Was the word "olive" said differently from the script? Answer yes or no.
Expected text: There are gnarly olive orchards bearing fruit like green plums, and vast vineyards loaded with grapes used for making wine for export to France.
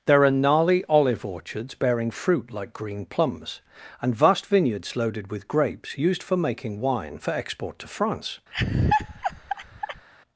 no